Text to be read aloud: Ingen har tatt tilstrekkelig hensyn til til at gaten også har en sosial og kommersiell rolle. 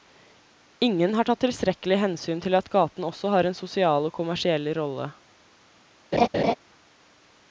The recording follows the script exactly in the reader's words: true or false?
false